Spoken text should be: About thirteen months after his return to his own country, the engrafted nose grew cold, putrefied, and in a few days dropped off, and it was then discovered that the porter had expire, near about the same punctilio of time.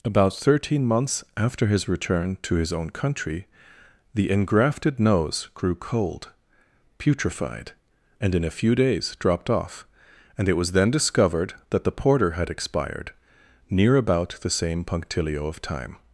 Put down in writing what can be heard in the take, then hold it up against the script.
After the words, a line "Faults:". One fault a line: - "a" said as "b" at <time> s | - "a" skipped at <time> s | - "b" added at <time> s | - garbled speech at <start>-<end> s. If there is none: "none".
About thirteen months after his return to his own country, the engrafted nose grew cold, putrefied, and in a few days dropped off, and it was then discovered that the porter had expired, near about the same punctilio of time.
Faults:
- "expire" said as "expired" at 12.5 s